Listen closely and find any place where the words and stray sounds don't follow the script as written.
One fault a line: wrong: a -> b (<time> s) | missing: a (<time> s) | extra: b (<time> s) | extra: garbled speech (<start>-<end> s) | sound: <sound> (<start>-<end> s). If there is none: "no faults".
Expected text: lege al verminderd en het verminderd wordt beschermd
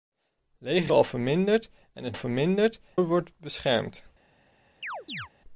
sound: chirp (4.8-5.3 s)